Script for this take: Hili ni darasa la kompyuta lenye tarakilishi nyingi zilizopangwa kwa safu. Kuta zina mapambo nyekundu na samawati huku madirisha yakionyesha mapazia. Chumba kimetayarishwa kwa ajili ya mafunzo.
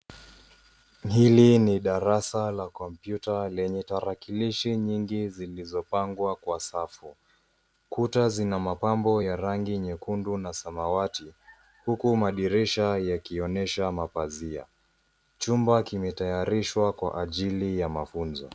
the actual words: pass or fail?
fail